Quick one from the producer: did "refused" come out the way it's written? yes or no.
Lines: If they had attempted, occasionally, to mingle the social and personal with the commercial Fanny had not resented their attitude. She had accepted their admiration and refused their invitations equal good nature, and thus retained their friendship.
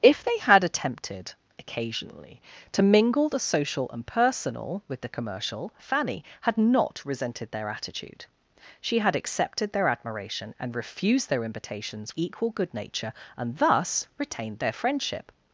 yes